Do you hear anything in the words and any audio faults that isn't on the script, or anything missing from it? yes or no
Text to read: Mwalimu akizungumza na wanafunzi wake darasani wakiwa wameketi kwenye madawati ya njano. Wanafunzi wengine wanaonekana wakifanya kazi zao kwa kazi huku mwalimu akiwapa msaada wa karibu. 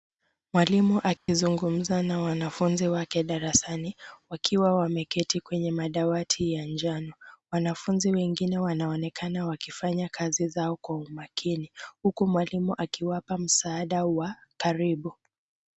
yes